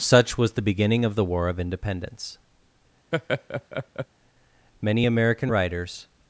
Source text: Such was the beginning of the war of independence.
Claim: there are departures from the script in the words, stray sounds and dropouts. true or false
true